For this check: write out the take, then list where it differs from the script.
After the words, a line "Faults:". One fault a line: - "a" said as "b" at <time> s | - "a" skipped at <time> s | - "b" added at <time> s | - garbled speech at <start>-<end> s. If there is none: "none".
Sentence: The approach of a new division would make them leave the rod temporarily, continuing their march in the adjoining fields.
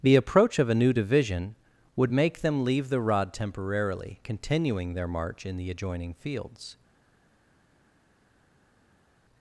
The approach of a new division would make them leave the rod temporarily, continuing their march in the adjoining fields.
Faults:
none